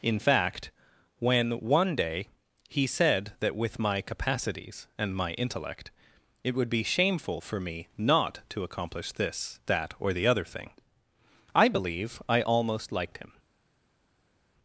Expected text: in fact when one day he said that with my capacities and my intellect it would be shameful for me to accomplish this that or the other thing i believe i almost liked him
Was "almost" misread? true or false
false